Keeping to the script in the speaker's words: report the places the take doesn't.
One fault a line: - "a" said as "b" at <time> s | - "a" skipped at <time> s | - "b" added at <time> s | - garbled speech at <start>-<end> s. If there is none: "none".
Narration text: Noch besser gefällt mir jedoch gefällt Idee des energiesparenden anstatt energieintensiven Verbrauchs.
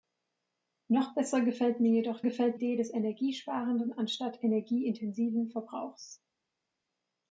none